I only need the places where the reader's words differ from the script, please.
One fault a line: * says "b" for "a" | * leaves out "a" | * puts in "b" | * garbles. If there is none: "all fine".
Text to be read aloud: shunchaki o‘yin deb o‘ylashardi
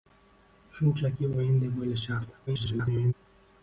* garbles